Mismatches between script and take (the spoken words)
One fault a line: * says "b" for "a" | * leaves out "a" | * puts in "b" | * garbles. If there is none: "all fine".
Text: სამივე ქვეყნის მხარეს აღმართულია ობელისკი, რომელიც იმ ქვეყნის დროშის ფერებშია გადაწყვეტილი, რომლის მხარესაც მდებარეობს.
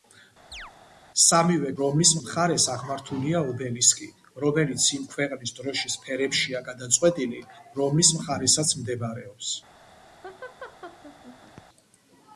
* says "რომლის" for "ქვეყნის"